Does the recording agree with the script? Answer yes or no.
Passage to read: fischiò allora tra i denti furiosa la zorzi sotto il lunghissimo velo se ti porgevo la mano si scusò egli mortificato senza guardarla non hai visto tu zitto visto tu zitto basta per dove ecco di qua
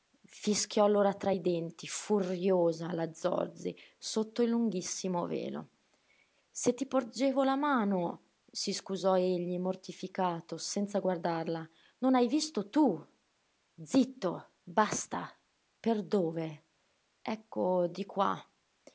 no